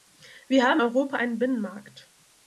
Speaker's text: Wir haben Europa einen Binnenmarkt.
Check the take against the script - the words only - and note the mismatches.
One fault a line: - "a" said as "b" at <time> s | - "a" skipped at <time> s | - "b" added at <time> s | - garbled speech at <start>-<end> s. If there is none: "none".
none